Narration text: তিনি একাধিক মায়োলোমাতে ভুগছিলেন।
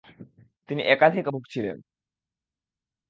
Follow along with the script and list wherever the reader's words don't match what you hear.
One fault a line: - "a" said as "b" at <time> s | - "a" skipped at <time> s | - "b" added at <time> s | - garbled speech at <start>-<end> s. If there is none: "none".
- "মায়োলোমাতে" skipped at 1.2 s